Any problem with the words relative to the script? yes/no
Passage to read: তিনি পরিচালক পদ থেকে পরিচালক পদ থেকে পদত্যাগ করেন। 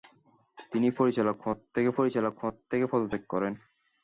no